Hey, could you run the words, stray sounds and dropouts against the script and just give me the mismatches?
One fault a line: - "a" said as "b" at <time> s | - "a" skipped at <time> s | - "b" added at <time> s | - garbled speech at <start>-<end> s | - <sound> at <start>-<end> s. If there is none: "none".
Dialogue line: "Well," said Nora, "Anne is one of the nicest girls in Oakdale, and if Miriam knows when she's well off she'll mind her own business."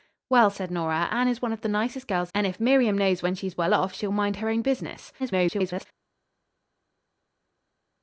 - "in Oakdale" skipped at 2.3 s
- garbled speech at 5.2-5.9 s